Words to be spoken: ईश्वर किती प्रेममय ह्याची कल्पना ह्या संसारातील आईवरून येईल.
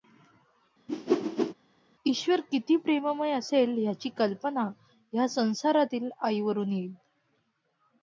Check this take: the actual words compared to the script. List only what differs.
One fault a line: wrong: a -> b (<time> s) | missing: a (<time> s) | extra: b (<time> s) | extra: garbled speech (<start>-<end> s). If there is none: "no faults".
extra: असेल (3.3 s)